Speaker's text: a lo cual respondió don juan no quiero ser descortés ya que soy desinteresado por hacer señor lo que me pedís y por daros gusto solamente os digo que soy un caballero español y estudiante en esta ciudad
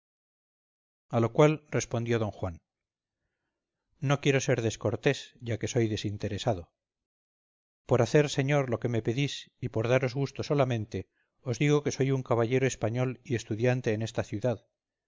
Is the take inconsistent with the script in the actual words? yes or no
no